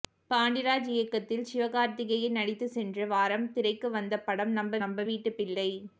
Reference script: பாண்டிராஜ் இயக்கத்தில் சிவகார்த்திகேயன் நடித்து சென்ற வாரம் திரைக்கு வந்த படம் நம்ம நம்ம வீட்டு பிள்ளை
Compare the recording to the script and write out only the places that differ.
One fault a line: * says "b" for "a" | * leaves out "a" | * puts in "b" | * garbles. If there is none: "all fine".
all fine